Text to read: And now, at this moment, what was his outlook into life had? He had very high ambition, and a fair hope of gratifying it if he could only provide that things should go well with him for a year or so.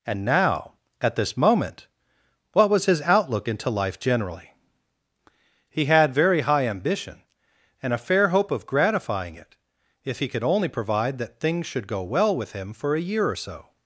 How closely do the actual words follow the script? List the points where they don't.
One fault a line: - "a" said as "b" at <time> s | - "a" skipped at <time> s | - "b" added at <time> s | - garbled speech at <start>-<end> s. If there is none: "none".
- "had" said as "generally" at 4.0 s